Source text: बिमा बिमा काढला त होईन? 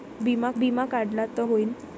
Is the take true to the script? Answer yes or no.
yes